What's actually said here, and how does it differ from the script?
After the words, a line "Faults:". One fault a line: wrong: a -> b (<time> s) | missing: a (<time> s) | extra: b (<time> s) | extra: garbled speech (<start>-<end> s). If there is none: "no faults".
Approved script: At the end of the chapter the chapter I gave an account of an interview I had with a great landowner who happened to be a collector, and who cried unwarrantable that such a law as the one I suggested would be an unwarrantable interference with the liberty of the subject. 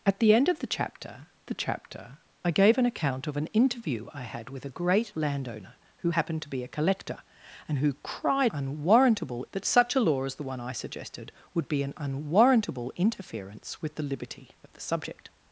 At the end of the chapter the chapter I gave an account of an interview I had with a great landowner who happened to be a collector, and who cried unwarrantable that such a law as the one I suggested would be an unwarrantable interference with the liberty of the subject.
Faults:
no faults